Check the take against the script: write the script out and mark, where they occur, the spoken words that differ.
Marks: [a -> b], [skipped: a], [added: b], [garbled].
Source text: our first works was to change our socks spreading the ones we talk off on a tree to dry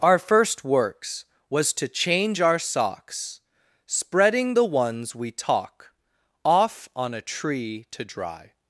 our first works was to change our socks spreading the ones we talk off on a tree to dry